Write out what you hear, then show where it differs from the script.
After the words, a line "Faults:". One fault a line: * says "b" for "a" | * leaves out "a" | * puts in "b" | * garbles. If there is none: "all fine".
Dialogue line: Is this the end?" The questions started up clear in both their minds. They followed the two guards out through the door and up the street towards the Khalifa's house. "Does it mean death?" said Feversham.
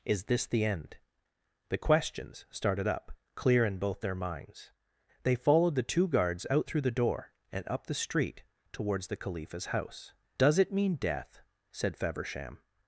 Is this the end?" The questions started up clear in both their minds. They followed the two guards out through the door and up the street towards the Khalifa's house. "Does it mean death?" said Feversham.
Faults:
all fine